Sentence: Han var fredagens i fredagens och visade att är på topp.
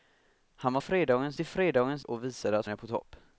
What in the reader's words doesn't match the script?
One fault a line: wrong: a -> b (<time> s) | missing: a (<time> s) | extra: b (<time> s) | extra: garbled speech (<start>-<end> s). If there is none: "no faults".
no faults